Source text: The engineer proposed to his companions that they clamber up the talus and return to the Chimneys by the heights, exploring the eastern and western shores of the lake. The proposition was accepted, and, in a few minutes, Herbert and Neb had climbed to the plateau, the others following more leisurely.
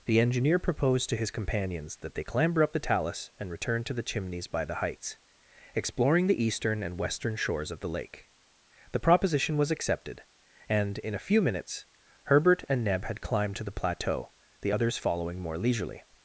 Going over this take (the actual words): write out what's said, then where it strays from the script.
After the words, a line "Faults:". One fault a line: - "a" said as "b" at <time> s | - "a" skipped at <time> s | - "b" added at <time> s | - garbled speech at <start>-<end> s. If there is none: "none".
The engineer proposed to his companions that they clamber up the talus and return to the Chimneys by the heights, exploring the eastern and western shores of the lake. The proposition was accepted, and, in a few minutes, Herbert and Neb had climbed to the plateau, the others following more leisurely.
Faults:
none